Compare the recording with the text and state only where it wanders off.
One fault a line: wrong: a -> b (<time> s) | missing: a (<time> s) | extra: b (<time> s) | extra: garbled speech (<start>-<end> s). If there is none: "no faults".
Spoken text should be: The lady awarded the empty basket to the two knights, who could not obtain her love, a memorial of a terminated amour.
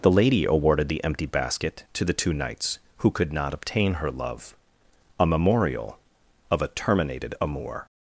no faults